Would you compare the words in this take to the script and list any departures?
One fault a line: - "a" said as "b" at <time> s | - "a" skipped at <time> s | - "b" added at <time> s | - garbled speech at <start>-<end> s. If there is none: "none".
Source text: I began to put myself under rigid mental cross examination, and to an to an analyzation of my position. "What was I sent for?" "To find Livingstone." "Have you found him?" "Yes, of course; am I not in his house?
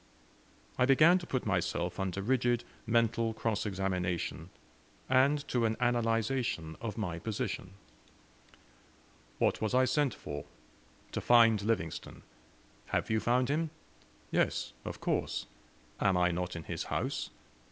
- "to an" skipped at 5.8 s